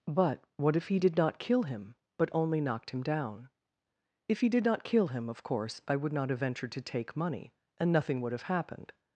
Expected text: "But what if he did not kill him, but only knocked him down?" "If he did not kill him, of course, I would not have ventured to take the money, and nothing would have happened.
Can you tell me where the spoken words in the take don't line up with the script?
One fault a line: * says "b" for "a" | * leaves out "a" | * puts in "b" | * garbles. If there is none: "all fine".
* leaves out "the"